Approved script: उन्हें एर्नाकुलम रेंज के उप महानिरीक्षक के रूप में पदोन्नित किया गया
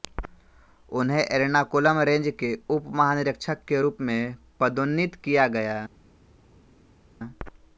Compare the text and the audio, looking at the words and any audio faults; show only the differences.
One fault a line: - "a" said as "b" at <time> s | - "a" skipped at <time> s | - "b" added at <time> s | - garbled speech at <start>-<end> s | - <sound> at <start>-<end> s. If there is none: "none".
none